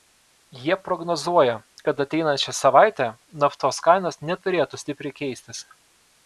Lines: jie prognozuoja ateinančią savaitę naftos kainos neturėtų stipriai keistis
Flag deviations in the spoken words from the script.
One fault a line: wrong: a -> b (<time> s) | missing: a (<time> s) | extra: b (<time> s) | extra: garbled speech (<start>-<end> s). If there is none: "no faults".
extra: kad (1.9 s)